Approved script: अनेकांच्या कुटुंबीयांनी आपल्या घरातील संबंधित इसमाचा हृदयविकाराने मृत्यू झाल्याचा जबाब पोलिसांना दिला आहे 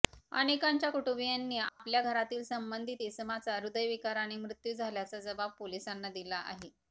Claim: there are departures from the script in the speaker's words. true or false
false